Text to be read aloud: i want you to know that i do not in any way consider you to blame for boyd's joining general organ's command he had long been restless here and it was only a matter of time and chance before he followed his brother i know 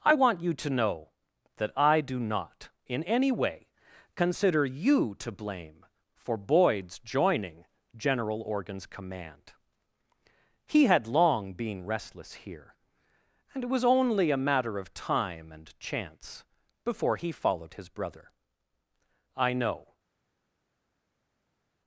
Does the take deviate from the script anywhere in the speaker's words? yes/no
no